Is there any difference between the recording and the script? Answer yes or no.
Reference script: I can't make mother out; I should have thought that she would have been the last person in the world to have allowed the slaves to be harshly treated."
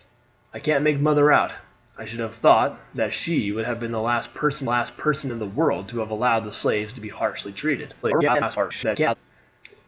yes